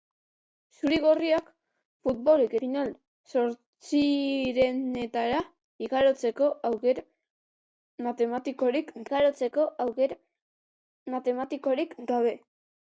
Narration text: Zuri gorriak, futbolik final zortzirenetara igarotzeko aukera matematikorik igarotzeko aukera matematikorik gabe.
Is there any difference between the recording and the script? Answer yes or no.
no